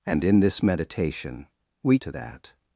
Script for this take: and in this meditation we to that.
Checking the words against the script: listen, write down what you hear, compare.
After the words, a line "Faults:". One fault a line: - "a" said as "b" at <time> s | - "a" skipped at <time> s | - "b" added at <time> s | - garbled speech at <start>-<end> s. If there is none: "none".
and in this meditation we to that.
Faults:
none